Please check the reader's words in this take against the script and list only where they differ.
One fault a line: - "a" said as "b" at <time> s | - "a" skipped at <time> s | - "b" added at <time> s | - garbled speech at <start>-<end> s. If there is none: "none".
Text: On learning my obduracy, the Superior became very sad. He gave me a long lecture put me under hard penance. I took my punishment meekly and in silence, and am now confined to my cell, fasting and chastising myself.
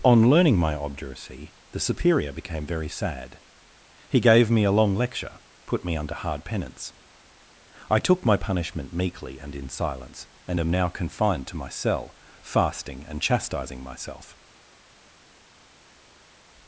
none